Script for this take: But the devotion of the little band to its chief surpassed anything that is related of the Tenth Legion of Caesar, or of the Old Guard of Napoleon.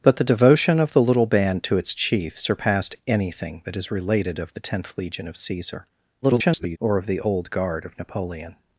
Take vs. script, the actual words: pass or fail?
fail